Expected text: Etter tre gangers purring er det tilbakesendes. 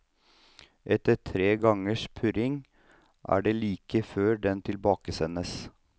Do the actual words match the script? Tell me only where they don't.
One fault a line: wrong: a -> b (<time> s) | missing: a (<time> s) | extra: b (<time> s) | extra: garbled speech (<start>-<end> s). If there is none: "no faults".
extra: like før den (3.6 s)